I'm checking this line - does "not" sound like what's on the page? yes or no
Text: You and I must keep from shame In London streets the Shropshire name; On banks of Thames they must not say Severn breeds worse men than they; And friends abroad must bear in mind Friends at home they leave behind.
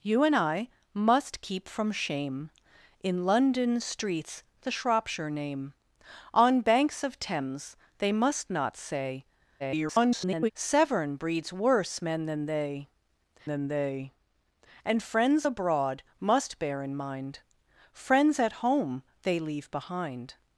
yes